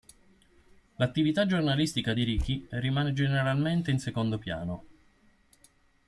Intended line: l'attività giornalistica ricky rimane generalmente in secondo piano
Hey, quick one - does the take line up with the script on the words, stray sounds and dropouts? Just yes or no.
no